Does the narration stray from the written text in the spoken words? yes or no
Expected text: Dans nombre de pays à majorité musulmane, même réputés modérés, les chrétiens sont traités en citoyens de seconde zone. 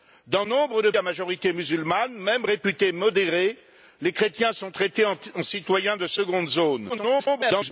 yes